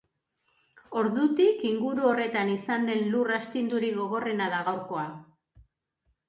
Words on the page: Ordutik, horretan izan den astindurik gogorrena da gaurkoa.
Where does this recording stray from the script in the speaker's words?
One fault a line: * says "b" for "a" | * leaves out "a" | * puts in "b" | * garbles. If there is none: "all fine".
* puts in "inguru"
* puts in "lur"